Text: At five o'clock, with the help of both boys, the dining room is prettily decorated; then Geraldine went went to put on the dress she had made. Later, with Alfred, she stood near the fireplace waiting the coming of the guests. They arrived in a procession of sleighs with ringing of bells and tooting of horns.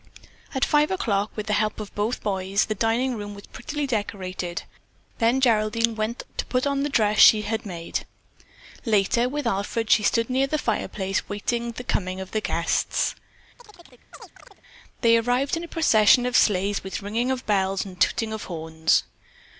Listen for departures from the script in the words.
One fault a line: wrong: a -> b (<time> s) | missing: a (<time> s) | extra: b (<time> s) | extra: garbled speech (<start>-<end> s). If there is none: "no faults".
wrong: is -> was (3.3 s)
missing: went (6.2 s)